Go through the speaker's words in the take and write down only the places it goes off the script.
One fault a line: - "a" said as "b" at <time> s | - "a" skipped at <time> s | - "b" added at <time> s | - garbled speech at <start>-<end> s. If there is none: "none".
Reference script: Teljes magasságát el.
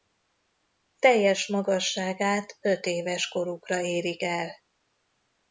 - "ötéves korukra érik" added at 2.6 s